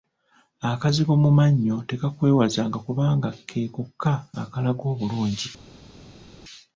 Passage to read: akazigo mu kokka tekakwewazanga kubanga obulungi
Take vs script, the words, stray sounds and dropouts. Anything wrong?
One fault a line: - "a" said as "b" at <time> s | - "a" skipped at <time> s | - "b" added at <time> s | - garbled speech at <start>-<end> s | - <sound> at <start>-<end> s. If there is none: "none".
- "kokka" said as "mannyo" at 1.4 s
- "ke kokka akalaga" added at 3.5 s